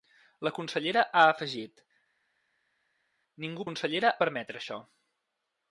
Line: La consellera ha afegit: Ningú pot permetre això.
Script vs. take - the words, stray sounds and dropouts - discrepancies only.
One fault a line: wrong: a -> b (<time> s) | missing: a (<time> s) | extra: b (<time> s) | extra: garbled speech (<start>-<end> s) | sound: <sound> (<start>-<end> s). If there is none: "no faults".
wrong: pot -> consellera (3.7 s)